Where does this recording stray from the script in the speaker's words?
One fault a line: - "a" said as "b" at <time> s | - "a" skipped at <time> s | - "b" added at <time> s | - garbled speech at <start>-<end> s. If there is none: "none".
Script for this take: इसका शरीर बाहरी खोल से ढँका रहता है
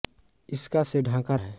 - "शरीर बाहरी खोल" skipped at 0.8 s
- "रहता" skipped at 1.3 s